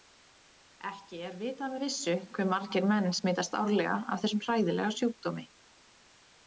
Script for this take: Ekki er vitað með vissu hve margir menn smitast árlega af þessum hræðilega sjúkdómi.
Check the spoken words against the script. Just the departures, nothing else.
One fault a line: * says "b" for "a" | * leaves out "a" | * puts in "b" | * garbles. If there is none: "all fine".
all fine